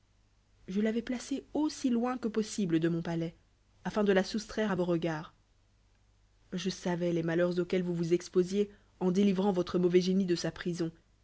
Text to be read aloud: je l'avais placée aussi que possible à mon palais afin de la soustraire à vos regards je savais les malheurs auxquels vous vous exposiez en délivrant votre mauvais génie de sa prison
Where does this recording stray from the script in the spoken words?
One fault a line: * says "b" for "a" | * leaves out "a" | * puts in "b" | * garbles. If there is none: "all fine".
* puts in "loin"
* says "de" for "à"